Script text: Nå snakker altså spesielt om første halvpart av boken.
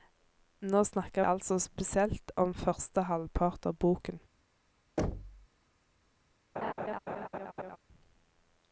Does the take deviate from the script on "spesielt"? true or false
false